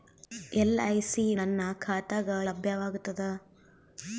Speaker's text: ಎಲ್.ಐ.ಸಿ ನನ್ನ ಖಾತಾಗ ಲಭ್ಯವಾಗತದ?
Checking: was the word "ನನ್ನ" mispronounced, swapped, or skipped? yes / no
no